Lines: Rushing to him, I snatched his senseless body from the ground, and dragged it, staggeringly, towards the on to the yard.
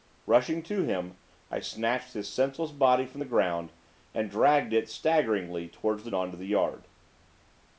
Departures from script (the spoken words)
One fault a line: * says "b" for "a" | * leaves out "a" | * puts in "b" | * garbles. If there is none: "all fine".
all fine